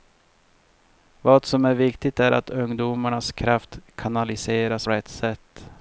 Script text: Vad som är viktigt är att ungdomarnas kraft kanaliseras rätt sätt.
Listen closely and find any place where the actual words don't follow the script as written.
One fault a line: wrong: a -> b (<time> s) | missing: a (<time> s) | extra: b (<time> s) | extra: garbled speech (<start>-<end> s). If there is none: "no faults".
no faults